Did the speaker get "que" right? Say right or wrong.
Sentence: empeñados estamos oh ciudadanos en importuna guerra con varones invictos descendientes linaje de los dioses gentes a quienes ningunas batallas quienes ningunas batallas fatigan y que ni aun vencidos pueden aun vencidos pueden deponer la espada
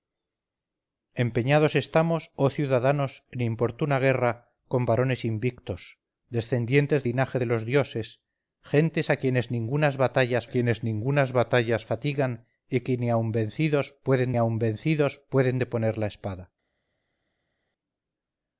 right